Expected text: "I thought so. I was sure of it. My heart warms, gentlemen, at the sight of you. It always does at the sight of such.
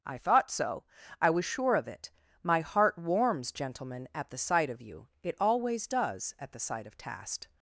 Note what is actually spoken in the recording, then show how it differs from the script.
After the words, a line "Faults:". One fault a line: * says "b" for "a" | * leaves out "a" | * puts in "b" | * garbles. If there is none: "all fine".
"I thought so. I was sure of it. My heart warms, gentlemen, at the sight of you. It always does at the sight of tast.
Faults:
* says "tast" for "such"